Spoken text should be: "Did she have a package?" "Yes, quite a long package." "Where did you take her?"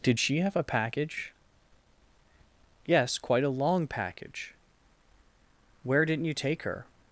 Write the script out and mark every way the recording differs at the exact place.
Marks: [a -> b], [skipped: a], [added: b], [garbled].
"Did she have a package?" "Yes, quite a long package." "Where [did -> didn't] you take her?"